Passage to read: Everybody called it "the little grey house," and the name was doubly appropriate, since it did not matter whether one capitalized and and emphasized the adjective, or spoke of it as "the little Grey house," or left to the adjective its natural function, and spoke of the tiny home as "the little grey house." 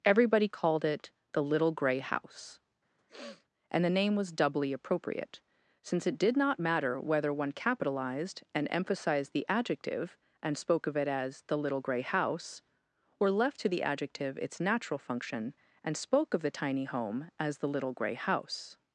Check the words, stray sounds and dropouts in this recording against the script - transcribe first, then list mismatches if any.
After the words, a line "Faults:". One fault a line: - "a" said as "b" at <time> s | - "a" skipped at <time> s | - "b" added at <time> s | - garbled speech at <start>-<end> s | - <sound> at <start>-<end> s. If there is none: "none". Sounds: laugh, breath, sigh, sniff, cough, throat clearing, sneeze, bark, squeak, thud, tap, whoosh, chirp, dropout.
Everybody called it "the little grey house," and the name was doubly appropriate, since it did not matter whether one capitalized and emphasized the adjective, and spoke of it as "the little Grey house," or left to the adjective its natural function, and spoke of the tiny home as "the little grey house."
Faults:
- sniff at 3.0-3.5 s
- "and" skipped at 8.7 s
- "or" said as "and" at 10.4 s